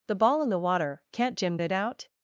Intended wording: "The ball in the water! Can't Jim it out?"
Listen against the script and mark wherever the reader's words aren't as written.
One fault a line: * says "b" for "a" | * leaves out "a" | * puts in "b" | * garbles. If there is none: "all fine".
all fine